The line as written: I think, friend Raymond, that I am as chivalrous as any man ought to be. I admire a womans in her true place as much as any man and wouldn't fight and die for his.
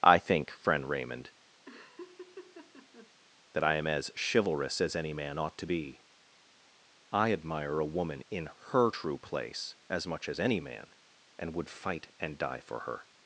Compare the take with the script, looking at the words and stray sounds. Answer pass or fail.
fail